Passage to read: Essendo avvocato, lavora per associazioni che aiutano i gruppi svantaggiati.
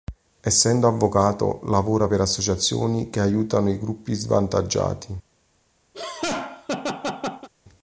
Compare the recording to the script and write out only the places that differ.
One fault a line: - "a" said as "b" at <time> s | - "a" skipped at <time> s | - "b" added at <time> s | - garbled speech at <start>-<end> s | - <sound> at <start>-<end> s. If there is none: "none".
- laugh at 5.9-7.5 s